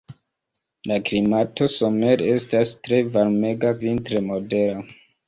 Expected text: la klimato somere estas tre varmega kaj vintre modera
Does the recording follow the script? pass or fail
fail